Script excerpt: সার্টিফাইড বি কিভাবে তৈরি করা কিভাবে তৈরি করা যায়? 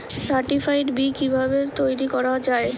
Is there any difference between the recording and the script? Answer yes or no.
yes